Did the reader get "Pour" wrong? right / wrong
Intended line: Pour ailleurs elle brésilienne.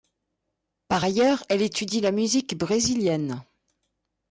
wrong